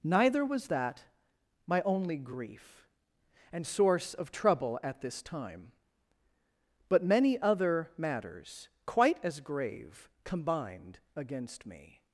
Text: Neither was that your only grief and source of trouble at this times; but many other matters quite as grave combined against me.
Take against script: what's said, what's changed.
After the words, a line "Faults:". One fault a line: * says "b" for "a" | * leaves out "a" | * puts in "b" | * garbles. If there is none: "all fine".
Neither was that my only grief and source of trouble at this time; but many other matters quite as grave combined against me.
Faults:
* says "my" for "your"
* says "time" for "times"